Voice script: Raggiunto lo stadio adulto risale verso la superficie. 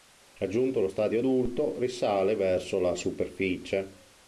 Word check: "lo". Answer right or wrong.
right